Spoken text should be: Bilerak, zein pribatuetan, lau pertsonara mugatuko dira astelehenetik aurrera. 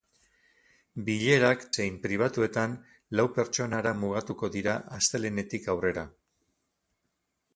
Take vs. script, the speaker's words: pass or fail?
pass